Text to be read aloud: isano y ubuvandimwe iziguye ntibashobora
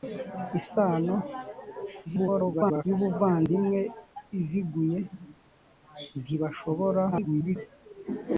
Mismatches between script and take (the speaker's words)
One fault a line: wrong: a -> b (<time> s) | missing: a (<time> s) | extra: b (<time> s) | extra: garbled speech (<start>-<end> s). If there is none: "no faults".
extra: garbled speech (2.1-2.8 s)
extra: garbled speech (7.1-7.6 s)